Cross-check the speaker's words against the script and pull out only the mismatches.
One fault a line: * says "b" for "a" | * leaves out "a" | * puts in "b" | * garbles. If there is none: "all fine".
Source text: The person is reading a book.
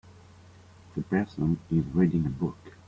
all fine